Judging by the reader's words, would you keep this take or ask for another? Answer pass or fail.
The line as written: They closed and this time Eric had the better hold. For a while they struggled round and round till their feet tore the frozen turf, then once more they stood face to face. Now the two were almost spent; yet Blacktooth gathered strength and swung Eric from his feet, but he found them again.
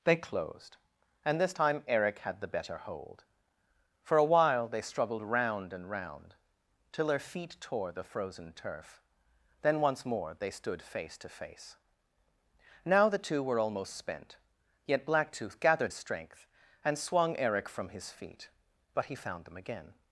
pass